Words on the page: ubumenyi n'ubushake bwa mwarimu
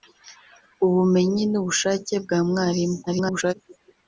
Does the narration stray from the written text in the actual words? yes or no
yes